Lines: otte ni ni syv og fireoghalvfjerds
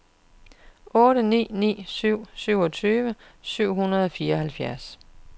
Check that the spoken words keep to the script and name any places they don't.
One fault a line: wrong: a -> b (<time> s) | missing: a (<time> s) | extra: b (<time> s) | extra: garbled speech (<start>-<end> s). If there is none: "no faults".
extra: syvogtyve syv hundrede (2.4 s)